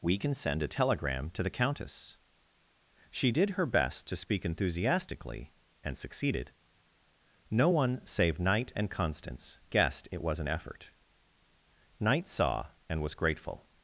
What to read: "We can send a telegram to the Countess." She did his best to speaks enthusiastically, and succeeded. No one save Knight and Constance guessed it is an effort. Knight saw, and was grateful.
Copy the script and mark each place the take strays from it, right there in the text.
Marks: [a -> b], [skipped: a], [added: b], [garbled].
"We can send a telegram to the Countess." She did [his -> her] best to [speaks -> speak] enthusiastically, and succeeded. No one save Knight and Constance guessed it [is -> was] an effort. Knight saw, and was grateful.